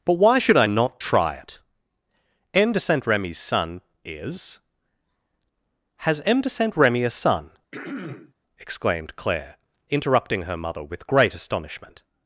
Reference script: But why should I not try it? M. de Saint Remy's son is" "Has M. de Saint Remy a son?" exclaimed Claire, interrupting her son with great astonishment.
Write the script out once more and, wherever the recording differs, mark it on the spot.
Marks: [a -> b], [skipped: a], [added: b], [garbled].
But why should I not try it? M. de Saint Remy's son is" "Has M. de Saint Remy a son?" exclaimed Claire, interrupting her [son -> mother] with great astonishment.